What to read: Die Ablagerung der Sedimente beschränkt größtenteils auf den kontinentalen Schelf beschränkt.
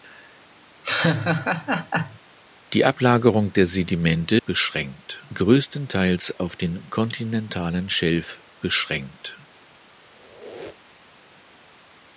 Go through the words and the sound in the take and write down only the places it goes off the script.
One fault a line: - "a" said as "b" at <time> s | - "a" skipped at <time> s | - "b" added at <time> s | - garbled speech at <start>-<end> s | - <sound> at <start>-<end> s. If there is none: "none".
- laugh at 0.8-2.2 s
- squeak at 10.0-11.2 s